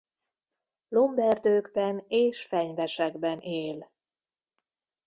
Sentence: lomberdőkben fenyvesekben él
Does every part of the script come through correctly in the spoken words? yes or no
no